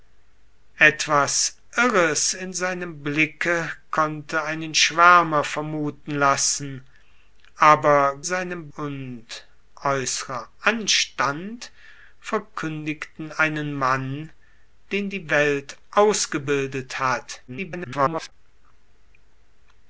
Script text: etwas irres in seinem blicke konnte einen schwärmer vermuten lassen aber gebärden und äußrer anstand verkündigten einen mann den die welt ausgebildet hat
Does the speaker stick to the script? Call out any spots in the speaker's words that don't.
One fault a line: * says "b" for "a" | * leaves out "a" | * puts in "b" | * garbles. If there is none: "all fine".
* says "seinem" for "gebärden"
* garbles